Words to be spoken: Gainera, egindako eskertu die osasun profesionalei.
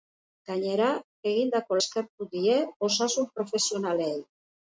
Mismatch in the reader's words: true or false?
false